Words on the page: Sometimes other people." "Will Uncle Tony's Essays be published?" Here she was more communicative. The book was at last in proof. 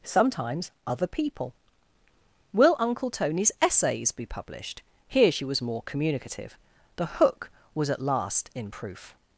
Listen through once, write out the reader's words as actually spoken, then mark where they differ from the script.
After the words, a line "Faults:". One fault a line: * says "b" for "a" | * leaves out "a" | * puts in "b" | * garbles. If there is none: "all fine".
Sometimes other people." "Will Uncle Tony's Essays be published?" Here she was more communicative. The hook was at last in proof.
Faults:
* says "hook" for "book"